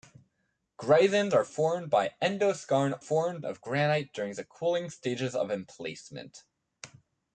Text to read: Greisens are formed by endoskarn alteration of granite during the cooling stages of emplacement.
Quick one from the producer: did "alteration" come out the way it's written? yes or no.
no